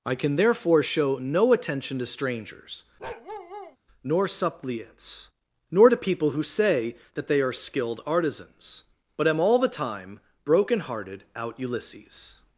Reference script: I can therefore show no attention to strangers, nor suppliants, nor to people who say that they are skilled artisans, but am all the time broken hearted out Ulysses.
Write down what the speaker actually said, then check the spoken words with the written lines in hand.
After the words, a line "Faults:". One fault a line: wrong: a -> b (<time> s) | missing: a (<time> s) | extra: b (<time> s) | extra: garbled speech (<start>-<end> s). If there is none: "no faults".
I can therefore show no attention to strangers, nor suppliants, nor to people who say that they are skilled artisans, but am all the time broken hearted out Ulysses.
Faults:
no faults